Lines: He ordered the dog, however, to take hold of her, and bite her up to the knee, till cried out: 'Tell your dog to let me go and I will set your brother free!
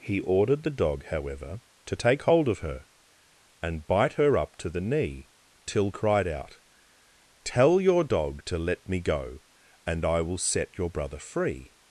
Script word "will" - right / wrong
right